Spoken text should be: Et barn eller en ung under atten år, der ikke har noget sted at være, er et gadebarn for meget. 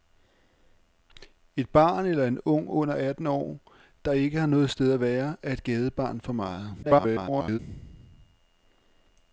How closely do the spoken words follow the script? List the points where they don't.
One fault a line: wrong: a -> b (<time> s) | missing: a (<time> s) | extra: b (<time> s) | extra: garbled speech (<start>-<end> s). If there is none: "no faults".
extra: garbled speech (6.8-7.6 s)